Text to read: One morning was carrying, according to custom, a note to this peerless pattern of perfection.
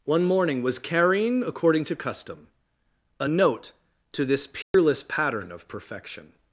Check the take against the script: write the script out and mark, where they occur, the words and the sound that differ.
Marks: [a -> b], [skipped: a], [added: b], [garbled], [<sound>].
One morning was carrying, according to custom, a note to this peerless [dropout] pattern of perfection.